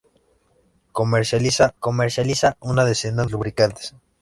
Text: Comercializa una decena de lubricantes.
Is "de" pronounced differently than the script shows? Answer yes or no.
yes